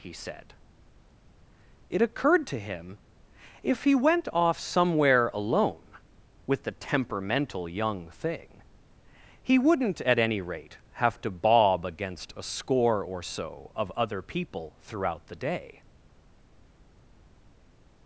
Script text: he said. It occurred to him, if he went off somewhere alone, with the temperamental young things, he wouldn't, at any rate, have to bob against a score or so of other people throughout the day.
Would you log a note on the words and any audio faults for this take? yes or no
yes